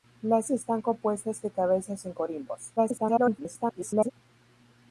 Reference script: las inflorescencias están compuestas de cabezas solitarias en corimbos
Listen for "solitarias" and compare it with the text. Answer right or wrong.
wrong